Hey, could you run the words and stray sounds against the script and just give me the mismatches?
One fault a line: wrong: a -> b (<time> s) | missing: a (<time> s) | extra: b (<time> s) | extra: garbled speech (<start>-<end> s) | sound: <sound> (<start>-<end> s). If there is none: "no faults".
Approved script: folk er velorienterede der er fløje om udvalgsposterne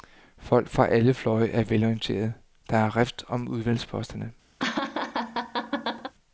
extra: fra alle fløje (0.7 s)
wrong: fløje -> rift (3.0 s)
sound: laugh (4.6-6.1 s)